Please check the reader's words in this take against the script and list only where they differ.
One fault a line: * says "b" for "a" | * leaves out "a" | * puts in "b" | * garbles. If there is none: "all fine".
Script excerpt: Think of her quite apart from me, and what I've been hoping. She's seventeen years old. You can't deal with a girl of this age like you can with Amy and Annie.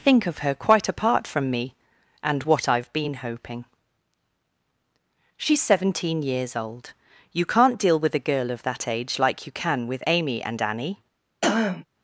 * says "that" for "this"